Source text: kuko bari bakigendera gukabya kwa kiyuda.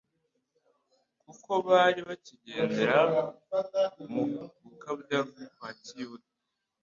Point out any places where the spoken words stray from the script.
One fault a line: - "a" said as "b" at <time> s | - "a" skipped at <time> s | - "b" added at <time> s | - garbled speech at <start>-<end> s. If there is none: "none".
- "mu" added at 4.1 s